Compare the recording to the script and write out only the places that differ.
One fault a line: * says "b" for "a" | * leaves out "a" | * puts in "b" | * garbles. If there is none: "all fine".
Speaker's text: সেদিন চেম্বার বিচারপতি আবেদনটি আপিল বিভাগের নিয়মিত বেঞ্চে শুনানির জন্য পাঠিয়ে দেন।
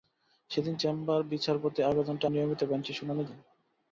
* leaves out "আপিল বিভাগের"
* leaves out "জন্য পাঠিয়ে"